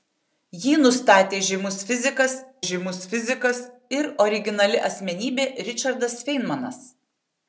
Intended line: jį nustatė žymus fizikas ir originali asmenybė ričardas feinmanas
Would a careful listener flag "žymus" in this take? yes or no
no